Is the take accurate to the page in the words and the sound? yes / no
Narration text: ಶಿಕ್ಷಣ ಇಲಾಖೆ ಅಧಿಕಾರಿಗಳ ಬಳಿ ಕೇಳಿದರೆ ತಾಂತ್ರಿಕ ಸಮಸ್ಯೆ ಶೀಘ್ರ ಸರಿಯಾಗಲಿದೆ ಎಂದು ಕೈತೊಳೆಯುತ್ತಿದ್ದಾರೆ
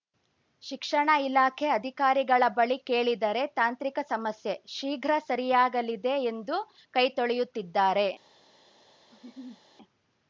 no